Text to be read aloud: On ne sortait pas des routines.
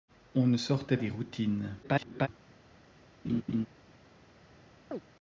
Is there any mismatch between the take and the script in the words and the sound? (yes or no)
yes